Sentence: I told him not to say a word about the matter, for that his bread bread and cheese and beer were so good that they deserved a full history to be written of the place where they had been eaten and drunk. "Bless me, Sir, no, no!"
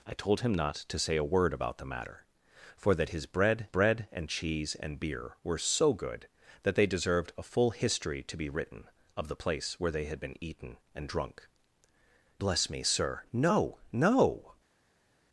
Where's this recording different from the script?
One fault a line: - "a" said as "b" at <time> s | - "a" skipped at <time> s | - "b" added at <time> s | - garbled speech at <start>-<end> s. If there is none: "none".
none